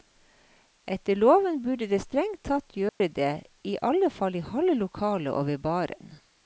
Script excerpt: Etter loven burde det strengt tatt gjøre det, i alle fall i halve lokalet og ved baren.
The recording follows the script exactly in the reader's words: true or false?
true